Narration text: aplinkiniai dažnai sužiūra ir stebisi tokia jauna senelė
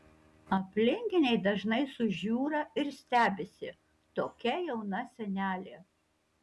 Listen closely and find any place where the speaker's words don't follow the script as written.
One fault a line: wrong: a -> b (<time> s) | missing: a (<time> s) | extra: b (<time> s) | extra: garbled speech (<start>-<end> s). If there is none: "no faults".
no faults